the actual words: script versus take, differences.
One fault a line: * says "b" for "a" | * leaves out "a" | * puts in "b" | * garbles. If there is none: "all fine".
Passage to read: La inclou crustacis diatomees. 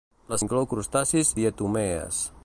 all fine